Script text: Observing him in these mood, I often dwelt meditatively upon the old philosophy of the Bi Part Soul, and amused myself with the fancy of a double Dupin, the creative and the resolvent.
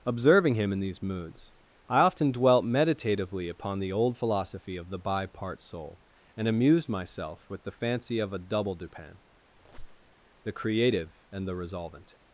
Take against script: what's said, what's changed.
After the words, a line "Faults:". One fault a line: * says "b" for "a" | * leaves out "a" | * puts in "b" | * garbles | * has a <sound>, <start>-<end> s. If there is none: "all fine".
Observing him in these moods, I often dwelt meditatively upon the old philosophy of the Bi Part Soul, and amused myself with the fancy of a double Dupin, the creative and the resolvent.
Faults:
* says "moods" for "mood"
* has a squeak, 9.5-10.1 s